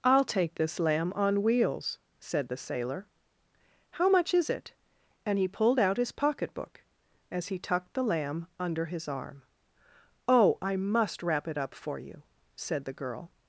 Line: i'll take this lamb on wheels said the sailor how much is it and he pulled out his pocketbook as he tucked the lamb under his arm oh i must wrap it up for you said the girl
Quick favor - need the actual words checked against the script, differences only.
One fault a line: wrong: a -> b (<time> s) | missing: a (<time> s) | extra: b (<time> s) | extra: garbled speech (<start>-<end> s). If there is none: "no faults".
no faults